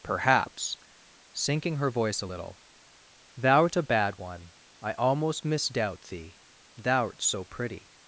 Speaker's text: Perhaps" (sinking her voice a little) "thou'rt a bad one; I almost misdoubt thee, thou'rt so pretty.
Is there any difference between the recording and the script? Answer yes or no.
no